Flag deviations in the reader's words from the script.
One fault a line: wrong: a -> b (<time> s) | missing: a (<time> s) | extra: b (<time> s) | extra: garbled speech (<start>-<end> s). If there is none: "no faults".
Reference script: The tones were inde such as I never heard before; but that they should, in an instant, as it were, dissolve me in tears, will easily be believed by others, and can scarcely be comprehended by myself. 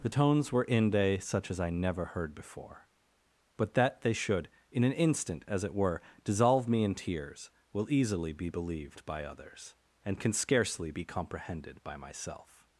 no faults